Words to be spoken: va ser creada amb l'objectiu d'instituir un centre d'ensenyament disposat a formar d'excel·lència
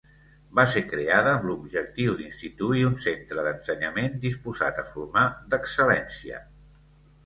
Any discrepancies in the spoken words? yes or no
no